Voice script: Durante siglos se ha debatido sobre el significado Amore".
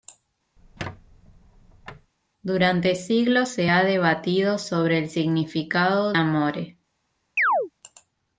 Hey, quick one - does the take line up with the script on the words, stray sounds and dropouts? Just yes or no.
no